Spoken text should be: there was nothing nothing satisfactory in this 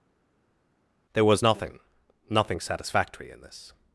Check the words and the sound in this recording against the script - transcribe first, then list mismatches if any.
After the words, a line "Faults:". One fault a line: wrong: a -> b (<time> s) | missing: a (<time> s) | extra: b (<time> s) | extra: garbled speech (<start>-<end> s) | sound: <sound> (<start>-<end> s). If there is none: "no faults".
there was nothing nothing satisfactory in this
Faults:
no faults